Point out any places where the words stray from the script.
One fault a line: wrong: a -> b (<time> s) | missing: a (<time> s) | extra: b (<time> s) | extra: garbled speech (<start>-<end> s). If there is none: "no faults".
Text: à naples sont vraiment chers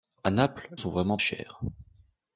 no faults